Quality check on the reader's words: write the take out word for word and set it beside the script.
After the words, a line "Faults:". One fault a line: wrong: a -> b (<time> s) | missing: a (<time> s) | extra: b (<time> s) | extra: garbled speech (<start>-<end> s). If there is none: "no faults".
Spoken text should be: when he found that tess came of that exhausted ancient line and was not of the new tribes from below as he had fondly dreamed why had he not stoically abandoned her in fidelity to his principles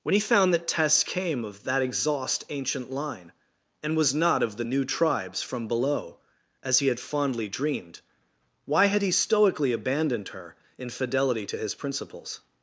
when he found that tess came of that exhaust ancient line and was not of the new tribes from below as he had fondly dreamed why had he stoically abandoned her in fidelity to his principles
Faults:
wrong: exhausted -> exhaust (1.8 s)
missing: not (9.1 s)